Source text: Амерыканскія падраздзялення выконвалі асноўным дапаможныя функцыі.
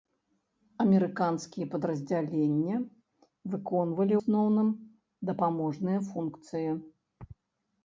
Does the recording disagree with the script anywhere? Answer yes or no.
no